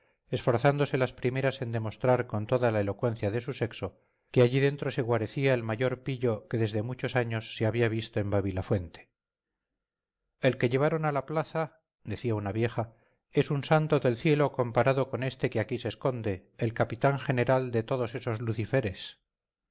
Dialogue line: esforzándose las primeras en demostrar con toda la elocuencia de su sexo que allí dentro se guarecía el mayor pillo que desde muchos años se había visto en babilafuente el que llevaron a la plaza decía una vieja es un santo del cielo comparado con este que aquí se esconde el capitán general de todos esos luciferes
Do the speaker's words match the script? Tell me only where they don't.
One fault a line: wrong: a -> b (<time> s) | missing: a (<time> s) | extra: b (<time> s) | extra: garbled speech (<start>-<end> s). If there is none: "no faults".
no faults